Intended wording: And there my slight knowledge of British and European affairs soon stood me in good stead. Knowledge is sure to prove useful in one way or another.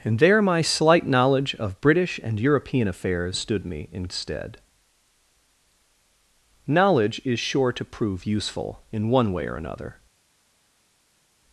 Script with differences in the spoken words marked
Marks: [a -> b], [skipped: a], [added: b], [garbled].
And there my slight knowledge of British and European affairs [skipped: soon] stood me in [skipped: good] stead. Knowledge is sure to prove useful in one way or another.